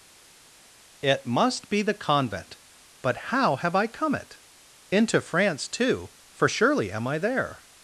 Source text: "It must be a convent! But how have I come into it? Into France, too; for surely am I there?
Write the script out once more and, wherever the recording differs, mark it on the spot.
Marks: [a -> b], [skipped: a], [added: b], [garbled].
"It must be [a -> the] convent! But how have I come [skipped: into] it? Into France, too; for surely am I there?